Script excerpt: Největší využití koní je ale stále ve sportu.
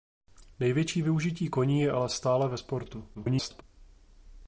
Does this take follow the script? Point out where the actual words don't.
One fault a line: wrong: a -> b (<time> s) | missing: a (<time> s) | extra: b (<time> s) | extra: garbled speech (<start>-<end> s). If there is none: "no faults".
extra: garbled speech (3.1-3.6 s)